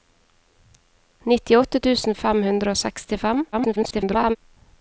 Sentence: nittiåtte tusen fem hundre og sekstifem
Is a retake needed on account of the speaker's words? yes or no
yes